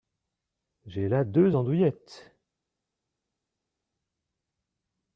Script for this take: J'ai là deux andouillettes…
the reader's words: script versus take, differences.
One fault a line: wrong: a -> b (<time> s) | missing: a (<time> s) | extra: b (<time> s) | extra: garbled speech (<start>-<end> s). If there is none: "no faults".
no faults